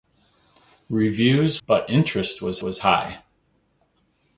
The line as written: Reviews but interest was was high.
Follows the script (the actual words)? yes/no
yes